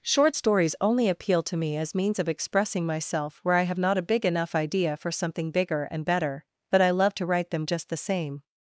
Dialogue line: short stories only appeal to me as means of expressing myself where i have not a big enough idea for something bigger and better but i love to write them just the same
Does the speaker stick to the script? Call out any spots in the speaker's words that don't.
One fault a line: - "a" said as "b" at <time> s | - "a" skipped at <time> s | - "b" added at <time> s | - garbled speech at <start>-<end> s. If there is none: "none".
none